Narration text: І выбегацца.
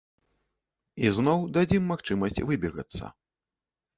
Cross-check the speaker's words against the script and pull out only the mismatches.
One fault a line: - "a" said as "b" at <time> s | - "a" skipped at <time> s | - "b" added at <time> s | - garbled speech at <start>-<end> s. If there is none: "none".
- "зноў дадзім магчымасць" added at 1.2 s